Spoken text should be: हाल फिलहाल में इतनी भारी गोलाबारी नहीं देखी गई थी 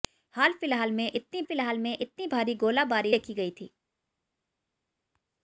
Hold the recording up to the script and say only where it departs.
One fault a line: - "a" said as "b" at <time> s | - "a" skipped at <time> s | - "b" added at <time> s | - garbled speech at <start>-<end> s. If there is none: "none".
- "फिलहाल में इतनी" added at 1.4 s
- "नहीं" skipped at 3.1 s